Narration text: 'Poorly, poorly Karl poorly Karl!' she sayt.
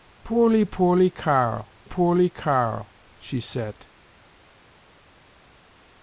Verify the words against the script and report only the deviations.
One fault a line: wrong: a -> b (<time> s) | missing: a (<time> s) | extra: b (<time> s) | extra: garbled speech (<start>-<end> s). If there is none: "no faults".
no faults